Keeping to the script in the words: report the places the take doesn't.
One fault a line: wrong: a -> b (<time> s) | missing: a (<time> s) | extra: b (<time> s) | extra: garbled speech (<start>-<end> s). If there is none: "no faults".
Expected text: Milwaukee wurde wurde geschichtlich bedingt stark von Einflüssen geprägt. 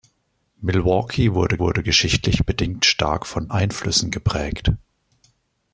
no faults